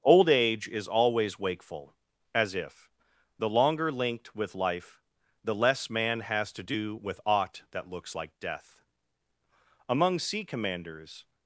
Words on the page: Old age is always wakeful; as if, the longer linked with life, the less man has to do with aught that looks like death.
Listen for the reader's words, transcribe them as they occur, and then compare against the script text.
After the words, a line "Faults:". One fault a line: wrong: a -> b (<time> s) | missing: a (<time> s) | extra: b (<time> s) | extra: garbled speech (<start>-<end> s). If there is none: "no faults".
Old age is always wakeful; as if, the longer linked with life, the less man has to do with aught that looks like death. Among sea commanders
Faults:
extra: Among sea commanders (9.9 s)